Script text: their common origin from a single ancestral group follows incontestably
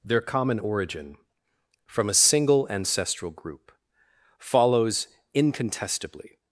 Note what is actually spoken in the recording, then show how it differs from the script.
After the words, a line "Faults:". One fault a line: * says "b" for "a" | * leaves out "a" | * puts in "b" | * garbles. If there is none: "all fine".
their common origin from a single ancestral group follows incontestably
Faults:
all fine